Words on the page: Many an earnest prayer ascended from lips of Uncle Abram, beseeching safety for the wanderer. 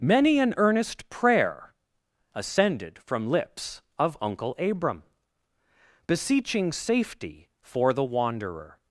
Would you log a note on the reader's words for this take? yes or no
no